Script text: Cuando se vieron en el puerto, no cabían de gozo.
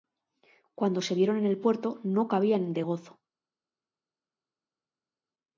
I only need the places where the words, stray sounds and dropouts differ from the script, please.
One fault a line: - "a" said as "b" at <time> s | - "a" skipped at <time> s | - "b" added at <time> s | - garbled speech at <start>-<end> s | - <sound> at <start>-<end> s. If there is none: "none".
none